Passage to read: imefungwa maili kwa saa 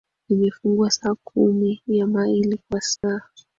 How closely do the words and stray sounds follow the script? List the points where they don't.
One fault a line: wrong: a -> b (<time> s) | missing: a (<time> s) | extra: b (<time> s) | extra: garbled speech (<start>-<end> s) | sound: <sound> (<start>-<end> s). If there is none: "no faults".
extra: saa kumi ya (0.9 s)
sound: dropout (3.0-3.0 s)